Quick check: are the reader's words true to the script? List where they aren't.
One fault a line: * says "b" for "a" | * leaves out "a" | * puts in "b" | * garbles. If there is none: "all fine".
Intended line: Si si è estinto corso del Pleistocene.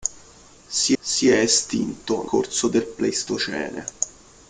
all fine